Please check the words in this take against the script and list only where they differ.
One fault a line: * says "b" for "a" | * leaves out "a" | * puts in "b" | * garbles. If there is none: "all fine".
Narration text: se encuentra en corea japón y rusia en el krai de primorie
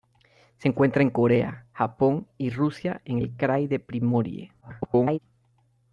* garbles